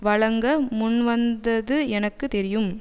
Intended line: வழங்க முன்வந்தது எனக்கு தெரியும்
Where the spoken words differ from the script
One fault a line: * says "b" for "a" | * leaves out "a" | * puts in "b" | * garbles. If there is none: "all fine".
all fine